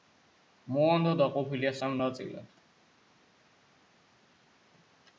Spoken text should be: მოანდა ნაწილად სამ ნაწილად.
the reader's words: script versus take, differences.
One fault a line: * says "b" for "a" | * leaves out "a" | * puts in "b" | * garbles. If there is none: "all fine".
* says "დაყოფილია" for "ნაწილად"